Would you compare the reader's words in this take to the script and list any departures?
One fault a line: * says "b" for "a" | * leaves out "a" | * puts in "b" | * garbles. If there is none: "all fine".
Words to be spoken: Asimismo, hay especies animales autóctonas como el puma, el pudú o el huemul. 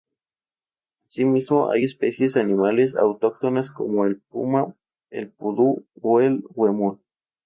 all fine